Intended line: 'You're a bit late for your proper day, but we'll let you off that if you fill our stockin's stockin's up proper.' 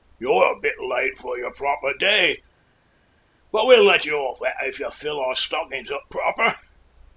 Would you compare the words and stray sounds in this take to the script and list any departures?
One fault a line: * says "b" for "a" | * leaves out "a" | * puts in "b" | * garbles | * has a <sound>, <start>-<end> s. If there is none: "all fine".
* leaves out "stockin's"